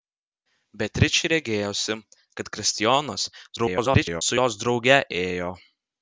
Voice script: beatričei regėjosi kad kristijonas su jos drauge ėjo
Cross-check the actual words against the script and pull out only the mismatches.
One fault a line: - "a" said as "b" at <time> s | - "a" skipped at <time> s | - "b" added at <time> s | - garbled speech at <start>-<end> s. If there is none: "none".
- garbled speech at 3.6-4.2 s